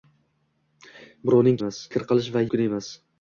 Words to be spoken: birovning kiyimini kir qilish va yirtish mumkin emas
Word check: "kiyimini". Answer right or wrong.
wrong